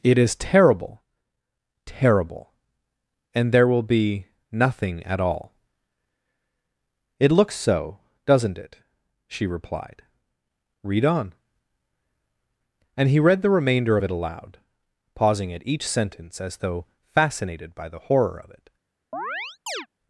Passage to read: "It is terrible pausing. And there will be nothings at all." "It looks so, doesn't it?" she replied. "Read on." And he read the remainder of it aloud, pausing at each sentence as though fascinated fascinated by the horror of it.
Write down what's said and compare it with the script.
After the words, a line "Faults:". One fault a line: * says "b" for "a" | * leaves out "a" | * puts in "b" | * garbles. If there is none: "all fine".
"It is terrible terrible. And there will be nothing at all." "It looks so, doesn't it?" she replied. "Read on." And he read the remainder of it aloud, pausing at each sentence as though fascinated by the horror of it.
Faults:
* says "terrible" for "pausing"
* says "nothing" for "nothings"
* leaves out "fascinated"